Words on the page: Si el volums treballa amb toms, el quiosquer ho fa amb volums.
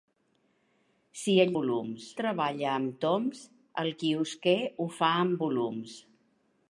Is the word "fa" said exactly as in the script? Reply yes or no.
yes